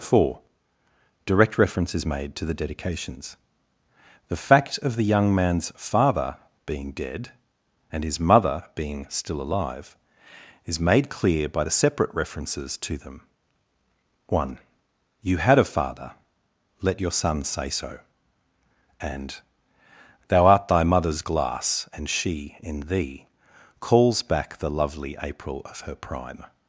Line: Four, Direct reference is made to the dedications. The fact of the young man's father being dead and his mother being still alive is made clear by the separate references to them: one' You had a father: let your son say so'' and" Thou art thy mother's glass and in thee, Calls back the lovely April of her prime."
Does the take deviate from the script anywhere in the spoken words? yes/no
yes